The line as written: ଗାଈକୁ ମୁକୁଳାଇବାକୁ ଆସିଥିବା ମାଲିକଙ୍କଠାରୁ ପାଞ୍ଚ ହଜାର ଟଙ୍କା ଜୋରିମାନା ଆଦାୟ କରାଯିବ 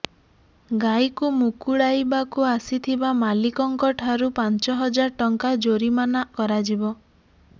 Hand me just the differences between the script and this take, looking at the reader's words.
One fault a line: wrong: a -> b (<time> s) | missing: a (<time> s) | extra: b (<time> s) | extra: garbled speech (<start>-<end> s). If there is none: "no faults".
missing: ଆଦାୟ (6.2 s)